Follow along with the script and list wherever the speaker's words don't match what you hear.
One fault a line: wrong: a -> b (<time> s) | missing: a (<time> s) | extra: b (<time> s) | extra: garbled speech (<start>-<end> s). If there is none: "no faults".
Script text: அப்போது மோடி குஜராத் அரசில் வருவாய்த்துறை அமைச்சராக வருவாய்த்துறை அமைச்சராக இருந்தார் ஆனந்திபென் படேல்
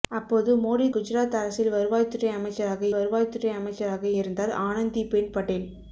no faults